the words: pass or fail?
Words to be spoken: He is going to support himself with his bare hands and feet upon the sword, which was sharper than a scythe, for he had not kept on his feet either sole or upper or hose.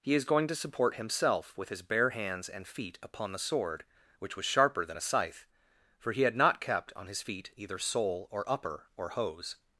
pass